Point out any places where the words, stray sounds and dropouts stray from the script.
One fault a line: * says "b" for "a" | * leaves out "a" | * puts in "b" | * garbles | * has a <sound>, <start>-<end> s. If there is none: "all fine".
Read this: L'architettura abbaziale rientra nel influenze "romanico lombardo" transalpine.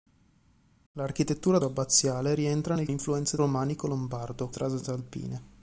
all fine